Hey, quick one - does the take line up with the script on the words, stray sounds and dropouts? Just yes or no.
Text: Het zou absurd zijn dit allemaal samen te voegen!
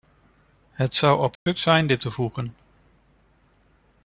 no